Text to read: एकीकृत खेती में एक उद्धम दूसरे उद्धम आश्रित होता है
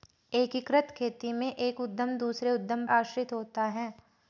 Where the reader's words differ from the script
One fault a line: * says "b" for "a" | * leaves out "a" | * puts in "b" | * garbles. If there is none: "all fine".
all fine